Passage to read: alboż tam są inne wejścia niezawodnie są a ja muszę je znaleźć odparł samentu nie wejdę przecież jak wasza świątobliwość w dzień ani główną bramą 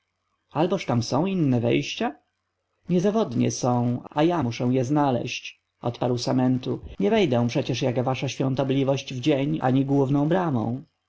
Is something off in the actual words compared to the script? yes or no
no